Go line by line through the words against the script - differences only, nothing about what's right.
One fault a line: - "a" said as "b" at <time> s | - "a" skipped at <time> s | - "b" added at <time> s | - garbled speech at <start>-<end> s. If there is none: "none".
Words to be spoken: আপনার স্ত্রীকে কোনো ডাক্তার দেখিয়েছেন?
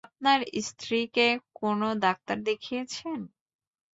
none